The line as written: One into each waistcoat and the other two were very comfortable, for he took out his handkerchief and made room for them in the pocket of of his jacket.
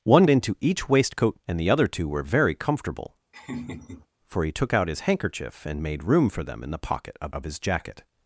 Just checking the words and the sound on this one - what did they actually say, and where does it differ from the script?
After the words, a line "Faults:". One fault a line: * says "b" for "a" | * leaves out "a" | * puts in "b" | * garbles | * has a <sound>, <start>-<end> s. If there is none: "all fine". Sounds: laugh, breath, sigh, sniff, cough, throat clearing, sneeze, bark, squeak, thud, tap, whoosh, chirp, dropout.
One into each waistcoat and the other two were very comfortable, for he took out his handkerchief and made room for them in the pocket of of his jacket.
Faults:
* has a laugh, 3.3-4.1 s